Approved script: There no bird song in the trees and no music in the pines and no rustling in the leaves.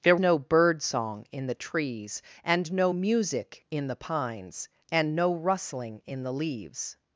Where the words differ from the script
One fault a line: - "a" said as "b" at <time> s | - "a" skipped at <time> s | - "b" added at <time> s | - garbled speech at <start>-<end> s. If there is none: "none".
none